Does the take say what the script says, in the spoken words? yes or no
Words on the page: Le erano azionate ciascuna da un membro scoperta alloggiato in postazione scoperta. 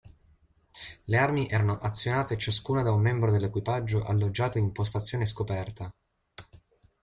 no